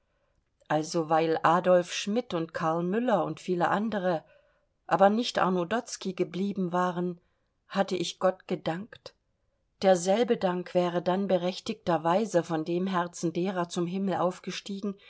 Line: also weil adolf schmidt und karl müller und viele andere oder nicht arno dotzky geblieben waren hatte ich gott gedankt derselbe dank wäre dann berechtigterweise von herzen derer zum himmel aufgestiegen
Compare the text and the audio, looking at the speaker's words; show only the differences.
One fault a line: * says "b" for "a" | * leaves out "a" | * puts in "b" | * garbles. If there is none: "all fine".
* says "aber" for "oder"
* puts in "dem"